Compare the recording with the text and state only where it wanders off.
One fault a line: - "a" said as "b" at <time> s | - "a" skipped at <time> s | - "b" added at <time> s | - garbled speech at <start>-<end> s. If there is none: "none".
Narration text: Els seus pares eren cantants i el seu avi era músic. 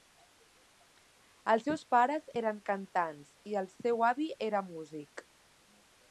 none